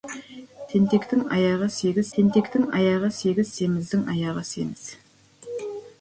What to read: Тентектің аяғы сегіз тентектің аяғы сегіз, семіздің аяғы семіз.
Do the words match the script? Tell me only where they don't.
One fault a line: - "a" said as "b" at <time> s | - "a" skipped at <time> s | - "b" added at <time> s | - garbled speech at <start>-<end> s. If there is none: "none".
none